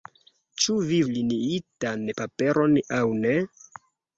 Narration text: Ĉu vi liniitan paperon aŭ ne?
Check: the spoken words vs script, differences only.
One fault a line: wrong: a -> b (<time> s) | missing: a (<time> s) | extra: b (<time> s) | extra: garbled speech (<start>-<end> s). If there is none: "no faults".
no faults